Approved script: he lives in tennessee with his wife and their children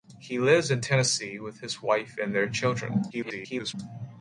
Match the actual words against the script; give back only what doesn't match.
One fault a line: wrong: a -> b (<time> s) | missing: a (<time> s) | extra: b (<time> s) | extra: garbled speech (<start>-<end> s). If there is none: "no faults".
extra: garbled speech (3.1-3.7 s)